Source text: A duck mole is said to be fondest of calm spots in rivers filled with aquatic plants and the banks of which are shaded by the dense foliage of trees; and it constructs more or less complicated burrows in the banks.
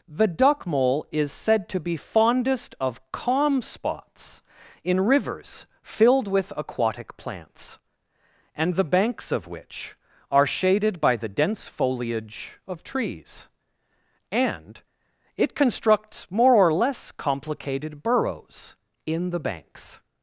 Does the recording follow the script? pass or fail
fail